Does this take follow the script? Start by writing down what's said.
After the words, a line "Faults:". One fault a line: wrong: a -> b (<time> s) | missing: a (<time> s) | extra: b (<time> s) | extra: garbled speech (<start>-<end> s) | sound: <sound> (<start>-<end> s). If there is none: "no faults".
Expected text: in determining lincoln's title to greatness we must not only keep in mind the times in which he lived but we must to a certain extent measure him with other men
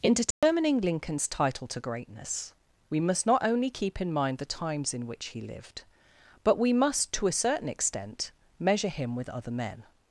in determining lincoln's title to greatness we must not only keep in mind the times in which he lived but we must to a certain extent measure him with other men
Faults:
sound: dropout (0.3-0.4 s)